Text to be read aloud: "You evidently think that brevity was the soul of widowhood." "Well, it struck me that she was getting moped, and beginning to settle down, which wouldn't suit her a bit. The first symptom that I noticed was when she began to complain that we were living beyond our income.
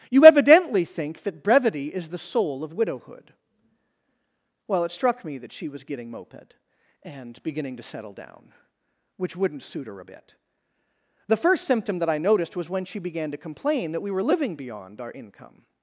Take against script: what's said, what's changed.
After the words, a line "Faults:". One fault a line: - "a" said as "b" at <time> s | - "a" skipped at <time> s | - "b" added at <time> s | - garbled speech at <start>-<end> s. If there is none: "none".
"You evidently think that brevity is the soul of widowhood." "Well, it struck me that she was getting moped, and beginning to settle down, which wouldn't suit her a bit. The first symptom that I noticed was when she began to complain that we were living beyond our income.
Faults:
- "was" said as "is" at 1.9 s